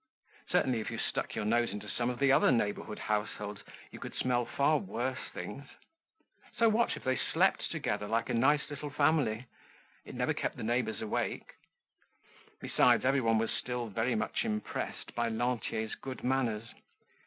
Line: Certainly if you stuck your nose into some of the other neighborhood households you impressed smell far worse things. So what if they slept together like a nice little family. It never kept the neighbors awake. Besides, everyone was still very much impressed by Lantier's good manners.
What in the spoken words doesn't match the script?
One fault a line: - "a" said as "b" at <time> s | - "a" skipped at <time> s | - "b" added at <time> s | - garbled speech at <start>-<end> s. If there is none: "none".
- "impressed" said as "could" at 4.0 s